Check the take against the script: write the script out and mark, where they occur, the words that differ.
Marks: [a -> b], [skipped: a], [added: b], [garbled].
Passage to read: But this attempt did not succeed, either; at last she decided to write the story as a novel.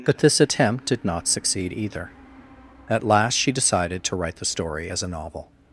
But this attempt did not succeed, either; at last she decided to write the story as a novel.